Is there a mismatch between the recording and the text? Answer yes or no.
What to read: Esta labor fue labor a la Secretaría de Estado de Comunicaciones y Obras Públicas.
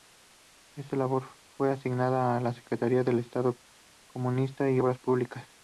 yes